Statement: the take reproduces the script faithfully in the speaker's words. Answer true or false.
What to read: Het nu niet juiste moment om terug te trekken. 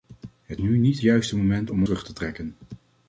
true